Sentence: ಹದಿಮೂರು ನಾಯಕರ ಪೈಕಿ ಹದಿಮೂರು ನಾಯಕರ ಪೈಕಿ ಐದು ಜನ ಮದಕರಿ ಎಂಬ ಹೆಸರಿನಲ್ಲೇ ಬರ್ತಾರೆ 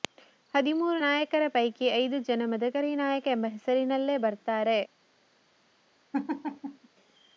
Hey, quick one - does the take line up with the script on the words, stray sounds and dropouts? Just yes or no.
no